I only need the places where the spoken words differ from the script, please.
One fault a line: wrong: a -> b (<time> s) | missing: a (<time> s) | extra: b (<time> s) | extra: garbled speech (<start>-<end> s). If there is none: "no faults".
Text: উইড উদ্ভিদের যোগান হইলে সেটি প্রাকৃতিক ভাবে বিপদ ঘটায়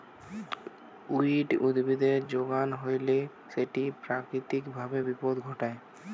no faults